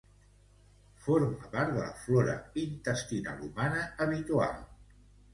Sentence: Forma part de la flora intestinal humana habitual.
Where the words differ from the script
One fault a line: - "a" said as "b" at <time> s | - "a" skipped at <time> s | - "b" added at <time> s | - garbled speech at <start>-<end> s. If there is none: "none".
none